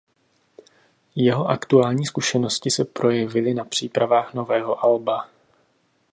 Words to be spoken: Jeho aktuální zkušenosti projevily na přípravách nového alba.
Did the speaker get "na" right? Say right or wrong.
right